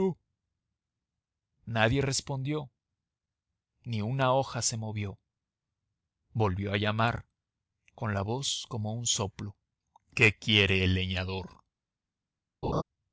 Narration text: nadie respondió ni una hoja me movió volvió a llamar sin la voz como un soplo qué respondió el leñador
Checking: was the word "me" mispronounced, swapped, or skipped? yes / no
yes